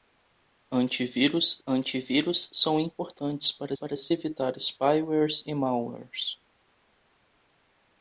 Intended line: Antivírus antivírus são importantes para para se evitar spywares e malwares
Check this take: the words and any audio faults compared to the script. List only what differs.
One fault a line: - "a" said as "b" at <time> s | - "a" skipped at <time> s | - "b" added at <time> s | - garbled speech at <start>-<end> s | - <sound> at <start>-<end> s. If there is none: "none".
none